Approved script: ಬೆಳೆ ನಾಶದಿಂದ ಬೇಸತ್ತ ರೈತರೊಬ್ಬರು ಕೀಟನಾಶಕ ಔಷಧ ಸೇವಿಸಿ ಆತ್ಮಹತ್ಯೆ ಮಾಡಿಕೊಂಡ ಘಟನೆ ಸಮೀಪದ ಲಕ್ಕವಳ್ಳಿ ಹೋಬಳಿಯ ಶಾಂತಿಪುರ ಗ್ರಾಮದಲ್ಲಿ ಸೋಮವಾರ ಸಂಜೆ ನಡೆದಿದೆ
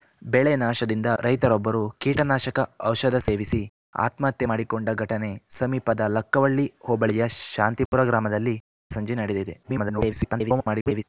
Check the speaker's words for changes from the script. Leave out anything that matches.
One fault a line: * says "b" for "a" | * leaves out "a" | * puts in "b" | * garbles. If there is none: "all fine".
* leaves out "ಬೇಸತ್ತ"
* leaves out "ಸೋಮವಾರ"
* garbles